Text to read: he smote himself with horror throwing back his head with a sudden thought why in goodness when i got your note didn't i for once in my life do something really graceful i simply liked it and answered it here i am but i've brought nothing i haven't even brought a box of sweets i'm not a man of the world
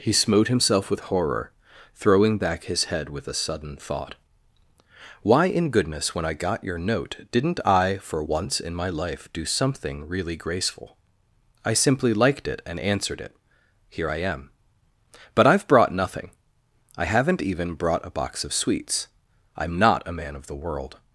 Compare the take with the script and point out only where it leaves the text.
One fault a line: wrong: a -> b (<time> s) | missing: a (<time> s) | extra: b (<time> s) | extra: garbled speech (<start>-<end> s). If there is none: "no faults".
no faults